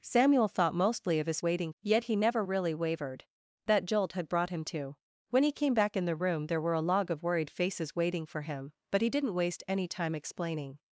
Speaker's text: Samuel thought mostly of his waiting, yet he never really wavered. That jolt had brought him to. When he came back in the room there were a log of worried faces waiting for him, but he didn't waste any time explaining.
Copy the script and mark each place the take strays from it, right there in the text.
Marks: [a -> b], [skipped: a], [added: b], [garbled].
Samuel thought mostly of his waiting, yet he never really wavered. That jolt had brought him to. When he came back in the room there were a log of worried faces waiting for him, but he didn't waste any time explaining.